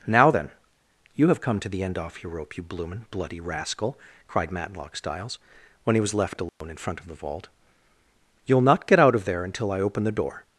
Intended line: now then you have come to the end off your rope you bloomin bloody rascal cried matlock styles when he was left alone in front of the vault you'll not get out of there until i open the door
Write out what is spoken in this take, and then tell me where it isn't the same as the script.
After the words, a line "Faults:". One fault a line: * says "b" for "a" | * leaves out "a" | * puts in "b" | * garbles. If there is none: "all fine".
now then you have come to the end off your rope you bloomin bloody rascal cried matlock styles when he was left alone in front of the vault you'll not get out of there until i open the door
Faults:
all fine